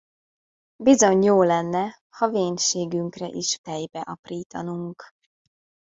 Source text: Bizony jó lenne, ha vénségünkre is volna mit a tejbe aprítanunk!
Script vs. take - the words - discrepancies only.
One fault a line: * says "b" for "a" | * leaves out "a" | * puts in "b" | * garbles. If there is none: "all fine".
* leaves out "volna mit a"